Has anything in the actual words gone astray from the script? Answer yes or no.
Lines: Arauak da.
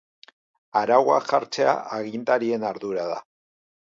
yes